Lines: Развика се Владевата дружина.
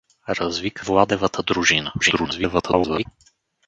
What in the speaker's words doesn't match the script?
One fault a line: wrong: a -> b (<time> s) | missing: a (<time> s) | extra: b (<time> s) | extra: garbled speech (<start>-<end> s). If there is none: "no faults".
missing: се (0.9 s)
extra: garbled speech (2.0-3.1 s)